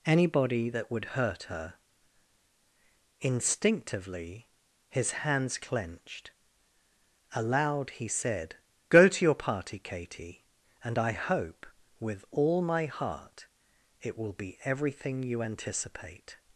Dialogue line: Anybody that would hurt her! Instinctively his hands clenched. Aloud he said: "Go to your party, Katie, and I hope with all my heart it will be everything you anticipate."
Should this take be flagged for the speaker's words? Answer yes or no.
no